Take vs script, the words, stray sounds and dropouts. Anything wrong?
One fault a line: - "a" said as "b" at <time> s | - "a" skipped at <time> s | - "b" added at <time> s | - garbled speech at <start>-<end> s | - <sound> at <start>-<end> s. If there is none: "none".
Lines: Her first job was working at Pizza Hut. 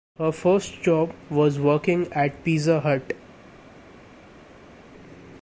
none